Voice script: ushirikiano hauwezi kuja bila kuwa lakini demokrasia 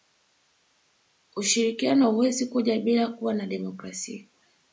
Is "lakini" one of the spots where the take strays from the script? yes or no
yes